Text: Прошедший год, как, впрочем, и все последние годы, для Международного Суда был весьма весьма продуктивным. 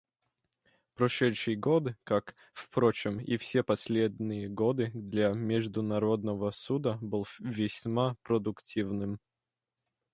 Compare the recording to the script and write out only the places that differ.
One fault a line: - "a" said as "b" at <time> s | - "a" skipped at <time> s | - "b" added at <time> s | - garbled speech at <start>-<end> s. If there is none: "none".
- "весьма" skipped at 8.1 s